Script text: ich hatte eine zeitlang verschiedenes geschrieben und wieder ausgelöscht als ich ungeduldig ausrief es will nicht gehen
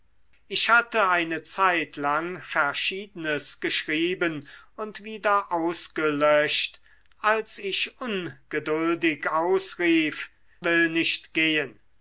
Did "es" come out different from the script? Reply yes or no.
yes